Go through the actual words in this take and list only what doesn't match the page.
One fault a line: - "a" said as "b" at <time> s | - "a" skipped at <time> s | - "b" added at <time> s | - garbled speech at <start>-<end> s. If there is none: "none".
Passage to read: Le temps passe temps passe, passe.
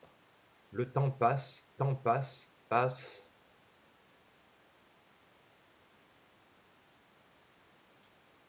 none